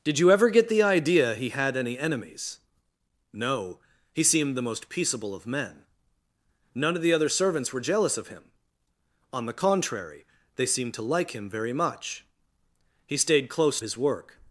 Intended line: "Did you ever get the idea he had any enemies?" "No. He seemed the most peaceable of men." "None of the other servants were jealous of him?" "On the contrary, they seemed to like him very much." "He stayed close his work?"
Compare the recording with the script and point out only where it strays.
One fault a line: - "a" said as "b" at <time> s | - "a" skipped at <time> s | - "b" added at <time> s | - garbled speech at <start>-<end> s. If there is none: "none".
none